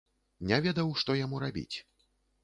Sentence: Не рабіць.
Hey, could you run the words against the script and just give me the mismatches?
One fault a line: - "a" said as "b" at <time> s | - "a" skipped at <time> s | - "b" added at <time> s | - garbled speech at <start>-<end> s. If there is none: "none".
- "ведаў што яму" added at 0.7 s